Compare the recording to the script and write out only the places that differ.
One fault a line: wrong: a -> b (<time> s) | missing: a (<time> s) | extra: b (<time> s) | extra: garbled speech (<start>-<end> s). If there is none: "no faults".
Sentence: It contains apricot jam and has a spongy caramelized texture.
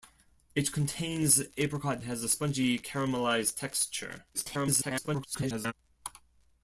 missing: jam and (2.0 s)
extra: garbled speech (4.3-5.7 s)